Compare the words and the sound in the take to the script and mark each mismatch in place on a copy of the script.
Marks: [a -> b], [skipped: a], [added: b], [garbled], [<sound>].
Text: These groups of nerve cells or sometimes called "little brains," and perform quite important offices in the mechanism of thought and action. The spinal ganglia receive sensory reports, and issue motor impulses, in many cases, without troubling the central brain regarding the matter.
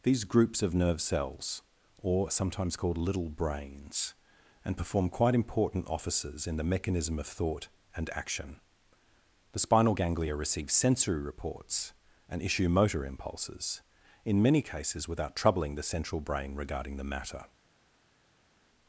These groups of nerve cells or sometimes called "little brains," and perform quite important offices in the mechanism of thought and action. The spinal ganglia receive sensory reports, and issue motor impulses, in many cases, without troubling the central brain regarding the matter.